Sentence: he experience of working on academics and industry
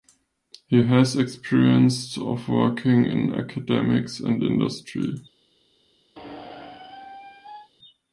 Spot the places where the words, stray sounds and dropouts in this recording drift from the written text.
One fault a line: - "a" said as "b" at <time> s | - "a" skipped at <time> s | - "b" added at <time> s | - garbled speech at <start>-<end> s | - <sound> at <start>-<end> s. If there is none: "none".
- "has" added at 0.8 s
- "on" said as "in" at 3.0 s
- squeak at 6.2-7.7 s